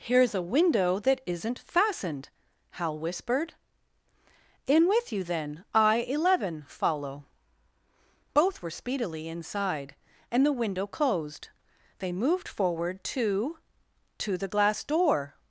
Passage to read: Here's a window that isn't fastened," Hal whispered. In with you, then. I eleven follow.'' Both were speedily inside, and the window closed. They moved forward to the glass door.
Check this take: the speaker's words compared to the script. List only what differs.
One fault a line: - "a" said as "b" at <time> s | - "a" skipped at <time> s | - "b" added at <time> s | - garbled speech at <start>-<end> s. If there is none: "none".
- "to" added at 14.2 s